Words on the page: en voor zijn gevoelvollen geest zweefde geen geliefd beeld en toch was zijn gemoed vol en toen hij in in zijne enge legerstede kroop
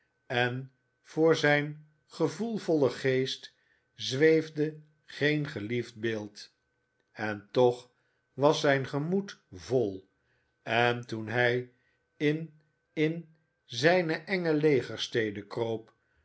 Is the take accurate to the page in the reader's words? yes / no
yes